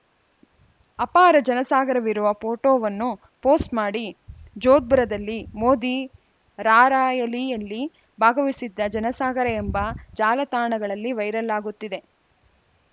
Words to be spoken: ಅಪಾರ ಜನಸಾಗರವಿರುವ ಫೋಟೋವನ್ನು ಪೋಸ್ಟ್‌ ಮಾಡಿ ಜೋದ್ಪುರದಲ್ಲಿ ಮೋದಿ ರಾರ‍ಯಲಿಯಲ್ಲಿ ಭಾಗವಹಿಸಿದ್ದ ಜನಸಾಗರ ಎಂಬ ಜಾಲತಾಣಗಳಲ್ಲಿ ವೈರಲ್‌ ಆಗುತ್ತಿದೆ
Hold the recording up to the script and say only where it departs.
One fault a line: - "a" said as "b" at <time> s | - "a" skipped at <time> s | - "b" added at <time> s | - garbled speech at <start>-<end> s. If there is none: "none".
none